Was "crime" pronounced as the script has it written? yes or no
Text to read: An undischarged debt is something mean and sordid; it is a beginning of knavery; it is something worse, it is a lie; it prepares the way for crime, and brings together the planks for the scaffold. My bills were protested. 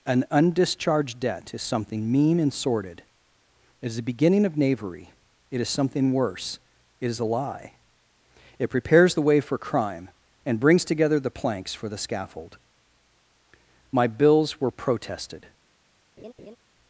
yes